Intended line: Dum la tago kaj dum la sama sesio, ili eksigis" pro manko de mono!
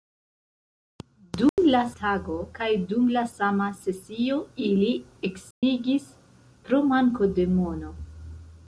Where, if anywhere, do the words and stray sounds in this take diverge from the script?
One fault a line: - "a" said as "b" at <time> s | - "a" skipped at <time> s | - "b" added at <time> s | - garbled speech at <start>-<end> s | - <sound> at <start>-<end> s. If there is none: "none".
- dropout at 1.5-1.6 s
- dropout at 5.5-5.6 s